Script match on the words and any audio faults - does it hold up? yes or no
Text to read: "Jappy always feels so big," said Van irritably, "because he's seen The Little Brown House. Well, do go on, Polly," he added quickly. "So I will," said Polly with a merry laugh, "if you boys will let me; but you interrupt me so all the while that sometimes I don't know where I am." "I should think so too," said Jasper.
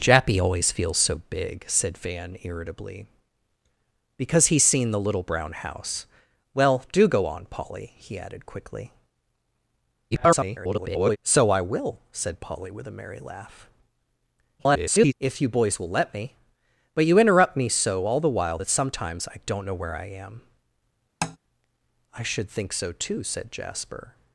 no